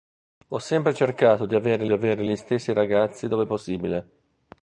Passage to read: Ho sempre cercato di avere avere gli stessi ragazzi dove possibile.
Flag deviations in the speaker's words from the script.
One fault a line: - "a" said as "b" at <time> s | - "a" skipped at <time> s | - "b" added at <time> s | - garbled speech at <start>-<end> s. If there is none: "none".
none